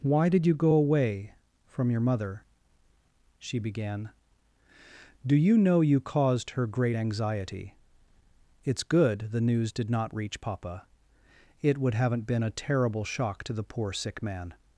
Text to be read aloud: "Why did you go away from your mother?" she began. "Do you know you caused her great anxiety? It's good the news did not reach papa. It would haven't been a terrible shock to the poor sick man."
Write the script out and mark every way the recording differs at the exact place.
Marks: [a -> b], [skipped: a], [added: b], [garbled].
"Why did you go away from your mother?" she began. "Do you know you caused her great anxiety? It's good the news did not reach papa. It would haven't been a terrible shock to the poor sick man."